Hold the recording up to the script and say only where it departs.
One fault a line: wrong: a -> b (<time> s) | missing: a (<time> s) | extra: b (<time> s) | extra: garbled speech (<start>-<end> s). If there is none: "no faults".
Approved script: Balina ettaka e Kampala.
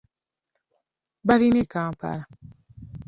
missing: ettaka (1.6 s)